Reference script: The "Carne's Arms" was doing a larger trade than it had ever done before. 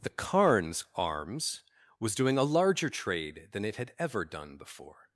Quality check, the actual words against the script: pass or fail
pass